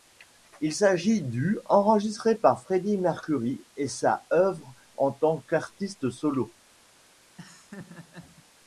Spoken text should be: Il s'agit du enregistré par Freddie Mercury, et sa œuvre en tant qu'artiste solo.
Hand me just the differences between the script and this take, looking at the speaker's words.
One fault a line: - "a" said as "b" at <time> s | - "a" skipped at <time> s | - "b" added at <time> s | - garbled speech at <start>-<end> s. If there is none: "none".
none